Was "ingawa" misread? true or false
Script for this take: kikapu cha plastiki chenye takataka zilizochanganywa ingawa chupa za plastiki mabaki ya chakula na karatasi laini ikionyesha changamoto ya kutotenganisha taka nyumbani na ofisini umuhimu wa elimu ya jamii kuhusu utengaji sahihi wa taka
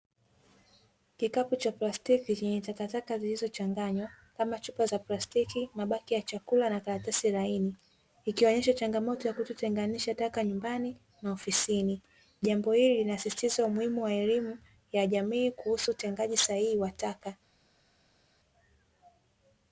true